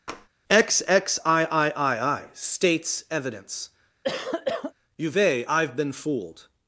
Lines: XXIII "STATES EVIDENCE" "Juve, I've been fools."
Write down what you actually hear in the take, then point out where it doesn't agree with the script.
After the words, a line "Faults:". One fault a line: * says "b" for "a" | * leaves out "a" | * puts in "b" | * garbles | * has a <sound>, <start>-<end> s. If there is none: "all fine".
XXIII "STATES EVIDENCE" "Juve, I've been fooled."
Faults:
* has a tap, 0.1-0.3 s
* has a cough, 4.0-4.7 s
* says "fooled" for "fools"